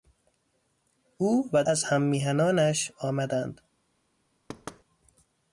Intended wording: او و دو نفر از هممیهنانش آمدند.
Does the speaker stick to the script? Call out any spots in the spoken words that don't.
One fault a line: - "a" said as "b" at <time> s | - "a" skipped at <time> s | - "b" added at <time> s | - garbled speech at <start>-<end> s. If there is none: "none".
- "دو نفر" skipped at 1.6 s